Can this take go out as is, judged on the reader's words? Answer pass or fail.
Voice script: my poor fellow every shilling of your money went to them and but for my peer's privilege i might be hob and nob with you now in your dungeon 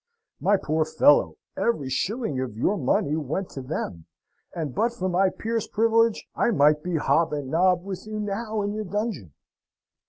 pass